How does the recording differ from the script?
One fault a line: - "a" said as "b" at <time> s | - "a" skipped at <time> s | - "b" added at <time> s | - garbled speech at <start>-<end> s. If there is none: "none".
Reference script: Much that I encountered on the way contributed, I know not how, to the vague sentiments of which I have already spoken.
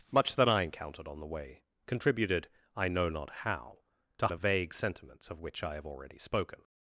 none